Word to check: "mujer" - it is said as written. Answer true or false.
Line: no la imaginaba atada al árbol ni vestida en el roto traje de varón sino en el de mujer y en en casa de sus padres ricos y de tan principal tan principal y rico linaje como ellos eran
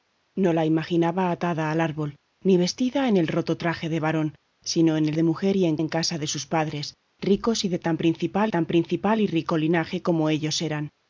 true